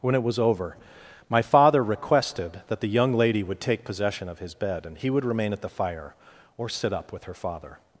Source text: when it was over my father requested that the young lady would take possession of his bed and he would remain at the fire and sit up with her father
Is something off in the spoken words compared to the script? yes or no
yes